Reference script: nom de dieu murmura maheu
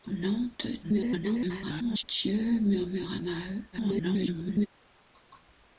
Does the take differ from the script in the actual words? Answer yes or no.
yes